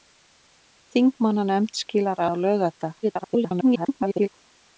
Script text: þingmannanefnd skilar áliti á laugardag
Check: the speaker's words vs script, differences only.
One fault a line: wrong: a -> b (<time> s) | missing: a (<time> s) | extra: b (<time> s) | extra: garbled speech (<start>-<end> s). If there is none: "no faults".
missing: áliti (2.2 s)
extra: garbled speech (3.0-4.3 s)